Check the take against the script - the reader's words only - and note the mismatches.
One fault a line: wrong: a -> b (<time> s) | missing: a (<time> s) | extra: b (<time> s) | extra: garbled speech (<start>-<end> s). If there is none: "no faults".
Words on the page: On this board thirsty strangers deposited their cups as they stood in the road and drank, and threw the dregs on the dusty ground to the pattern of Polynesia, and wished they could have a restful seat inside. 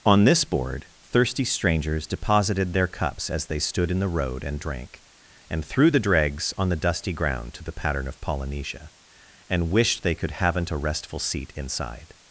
wrong: have -> haven't (10.3 s)